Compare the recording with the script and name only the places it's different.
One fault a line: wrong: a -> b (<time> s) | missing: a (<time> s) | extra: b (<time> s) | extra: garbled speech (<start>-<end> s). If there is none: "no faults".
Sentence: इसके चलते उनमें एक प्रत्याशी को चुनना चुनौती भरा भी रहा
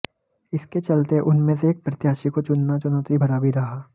extra: से (1.6 s)